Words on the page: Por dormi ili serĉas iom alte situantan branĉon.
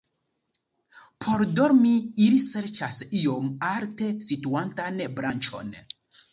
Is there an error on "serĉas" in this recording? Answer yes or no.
no